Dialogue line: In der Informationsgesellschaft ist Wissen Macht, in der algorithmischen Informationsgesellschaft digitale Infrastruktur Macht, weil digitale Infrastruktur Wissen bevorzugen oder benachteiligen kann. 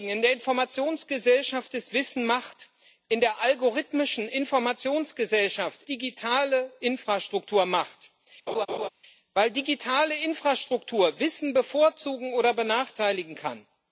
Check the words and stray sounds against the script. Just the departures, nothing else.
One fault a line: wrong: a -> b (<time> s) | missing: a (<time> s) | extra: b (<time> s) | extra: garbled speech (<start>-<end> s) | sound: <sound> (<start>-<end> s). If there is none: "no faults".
sound: laugh (8.5-8.9 s)